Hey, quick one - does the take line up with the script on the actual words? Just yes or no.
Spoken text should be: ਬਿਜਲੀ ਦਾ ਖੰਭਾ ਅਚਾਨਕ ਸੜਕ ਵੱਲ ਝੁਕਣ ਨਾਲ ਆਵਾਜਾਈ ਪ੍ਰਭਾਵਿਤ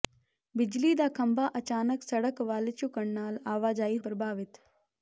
yes